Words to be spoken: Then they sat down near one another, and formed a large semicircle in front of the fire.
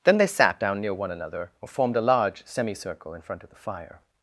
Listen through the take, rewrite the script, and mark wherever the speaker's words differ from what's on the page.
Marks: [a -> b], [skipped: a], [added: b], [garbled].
Then they sat down near one another, [and -> or] formed a large semicircle in front of the fire.